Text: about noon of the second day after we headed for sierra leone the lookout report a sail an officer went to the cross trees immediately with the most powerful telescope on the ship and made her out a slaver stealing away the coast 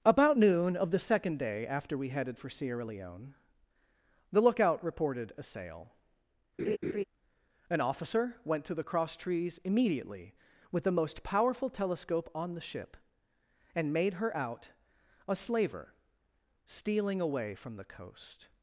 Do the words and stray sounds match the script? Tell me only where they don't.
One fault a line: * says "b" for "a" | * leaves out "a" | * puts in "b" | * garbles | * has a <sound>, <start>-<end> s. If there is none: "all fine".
* says "reported" for "report"
* has a laugh, 6.6-7.0 s
* puts in "from"